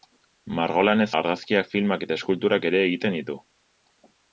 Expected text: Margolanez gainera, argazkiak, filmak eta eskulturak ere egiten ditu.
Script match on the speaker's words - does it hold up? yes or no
no